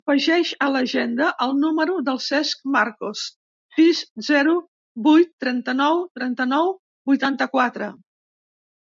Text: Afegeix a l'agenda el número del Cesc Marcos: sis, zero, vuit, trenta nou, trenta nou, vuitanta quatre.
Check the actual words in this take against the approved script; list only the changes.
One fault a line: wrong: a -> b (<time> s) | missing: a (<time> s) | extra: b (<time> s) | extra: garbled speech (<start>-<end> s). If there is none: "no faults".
no faults